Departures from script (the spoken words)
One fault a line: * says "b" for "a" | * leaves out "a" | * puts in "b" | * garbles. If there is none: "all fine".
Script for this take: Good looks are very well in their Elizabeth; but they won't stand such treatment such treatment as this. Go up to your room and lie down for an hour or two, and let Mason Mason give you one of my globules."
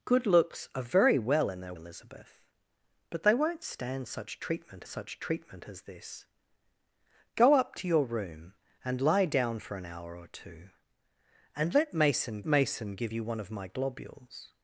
all fine